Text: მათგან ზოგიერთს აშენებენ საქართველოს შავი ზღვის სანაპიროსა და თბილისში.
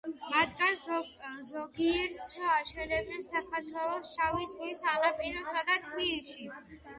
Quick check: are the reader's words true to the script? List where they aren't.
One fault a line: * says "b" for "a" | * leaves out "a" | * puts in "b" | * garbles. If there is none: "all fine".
all fine